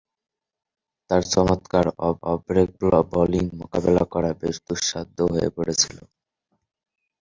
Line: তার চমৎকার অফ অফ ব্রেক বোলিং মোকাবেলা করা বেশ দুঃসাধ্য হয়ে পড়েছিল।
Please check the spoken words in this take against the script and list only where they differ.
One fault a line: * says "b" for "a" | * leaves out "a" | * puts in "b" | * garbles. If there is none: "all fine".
all fine